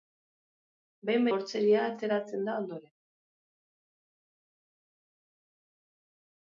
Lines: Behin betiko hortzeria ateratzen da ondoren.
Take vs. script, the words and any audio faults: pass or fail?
fail